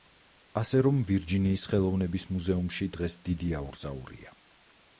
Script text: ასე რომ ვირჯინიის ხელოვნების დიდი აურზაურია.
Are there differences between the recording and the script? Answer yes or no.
yes